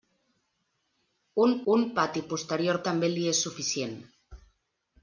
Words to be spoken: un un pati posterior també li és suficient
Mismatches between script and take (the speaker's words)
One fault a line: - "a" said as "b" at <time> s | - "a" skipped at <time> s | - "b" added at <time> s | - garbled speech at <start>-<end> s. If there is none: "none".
none